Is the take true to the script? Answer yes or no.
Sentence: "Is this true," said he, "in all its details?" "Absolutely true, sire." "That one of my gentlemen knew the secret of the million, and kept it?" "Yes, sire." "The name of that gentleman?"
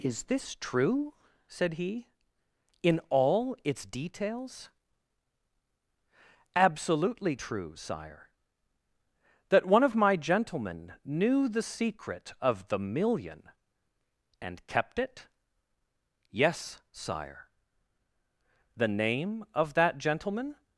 yes